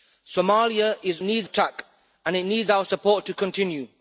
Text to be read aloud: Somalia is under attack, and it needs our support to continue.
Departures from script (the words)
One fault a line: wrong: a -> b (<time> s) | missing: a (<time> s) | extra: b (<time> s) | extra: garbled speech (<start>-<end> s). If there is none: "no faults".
wrong: under -> needs (1.2 s)